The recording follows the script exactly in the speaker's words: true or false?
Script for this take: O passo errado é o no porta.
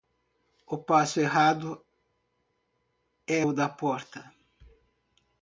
false